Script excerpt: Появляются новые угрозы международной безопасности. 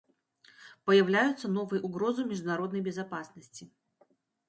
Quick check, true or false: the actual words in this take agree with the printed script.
true